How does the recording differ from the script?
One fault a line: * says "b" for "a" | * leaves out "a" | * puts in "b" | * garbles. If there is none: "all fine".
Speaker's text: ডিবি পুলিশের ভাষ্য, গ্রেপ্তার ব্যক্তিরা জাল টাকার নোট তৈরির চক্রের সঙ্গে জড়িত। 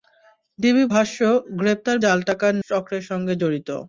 * leaves out "পুলিশের"
* leaves out "ব্যক্তিরা"
* leaves out "নোট তৈরির"